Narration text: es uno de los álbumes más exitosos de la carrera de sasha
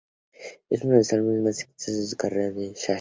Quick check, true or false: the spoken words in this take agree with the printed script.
true